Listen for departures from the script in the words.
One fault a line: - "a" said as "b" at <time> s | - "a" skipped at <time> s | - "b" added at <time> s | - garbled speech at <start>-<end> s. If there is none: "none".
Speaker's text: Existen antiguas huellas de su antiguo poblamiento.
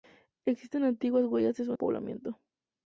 - "antiguo" skipped at 1.7 s